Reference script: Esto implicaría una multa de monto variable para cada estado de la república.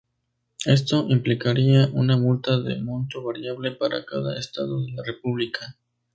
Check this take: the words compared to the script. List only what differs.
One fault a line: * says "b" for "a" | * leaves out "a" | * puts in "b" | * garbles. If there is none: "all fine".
all fine